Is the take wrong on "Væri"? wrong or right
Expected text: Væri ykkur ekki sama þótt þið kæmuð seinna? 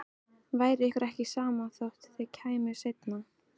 right